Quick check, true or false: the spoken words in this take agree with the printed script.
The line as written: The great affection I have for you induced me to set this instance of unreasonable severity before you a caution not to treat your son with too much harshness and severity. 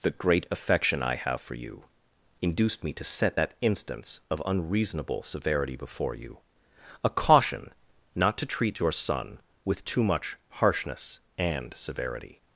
false